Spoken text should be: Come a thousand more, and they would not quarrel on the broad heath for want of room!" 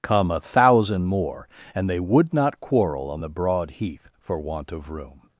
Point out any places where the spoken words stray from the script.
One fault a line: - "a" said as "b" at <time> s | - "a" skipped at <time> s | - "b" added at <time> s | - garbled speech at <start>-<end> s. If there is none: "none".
none